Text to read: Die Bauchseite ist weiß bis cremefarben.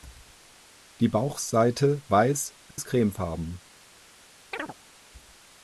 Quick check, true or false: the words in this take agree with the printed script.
false